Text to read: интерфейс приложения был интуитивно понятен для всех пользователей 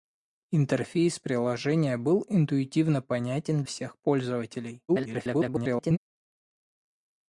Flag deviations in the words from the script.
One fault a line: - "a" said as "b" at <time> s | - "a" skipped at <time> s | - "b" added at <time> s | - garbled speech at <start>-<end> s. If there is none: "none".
- "для" skipped at 3.6 s
- garbled speech at 4.9-6.0 s